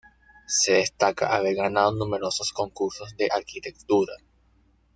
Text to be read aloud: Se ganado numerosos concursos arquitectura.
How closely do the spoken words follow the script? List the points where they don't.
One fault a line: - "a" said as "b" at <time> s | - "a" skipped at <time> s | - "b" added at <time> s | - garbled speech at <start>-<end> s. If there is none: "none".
- "destaca haber" added at 0.7 s
- "de" added at 3.2 s